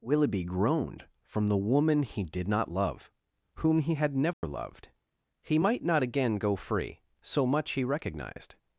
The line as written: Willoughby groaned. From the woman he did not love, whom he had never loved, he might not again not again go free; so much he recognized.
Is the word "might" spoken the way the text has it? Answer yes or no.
yes